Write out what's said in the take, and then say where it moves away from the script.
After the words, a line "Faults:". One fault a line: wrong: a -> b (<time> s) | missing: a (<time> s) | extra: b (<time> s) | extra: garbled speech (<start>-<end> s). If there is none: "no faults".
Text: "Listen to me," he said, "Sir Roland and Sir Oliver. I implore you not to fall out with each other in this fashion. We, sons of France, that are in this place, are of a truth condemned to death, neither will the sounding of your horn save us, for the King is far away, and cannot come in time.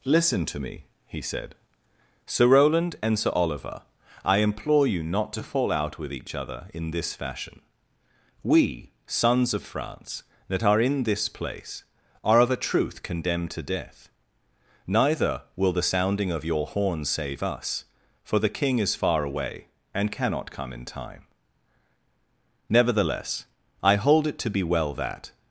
"Listen to me," he said, "Sir Roland and Sir Oliver. I implore you not to fall out with each other in this fashion. We, sons of France, that are in this place, are of a truth condemned to death, neither will the sounding of your horn save us, for the King is far away, and cannot come in time. Nevertheless, I hold it to be well that
Faults:
extra: Nevertheless I hold it to be well that (22.7 s)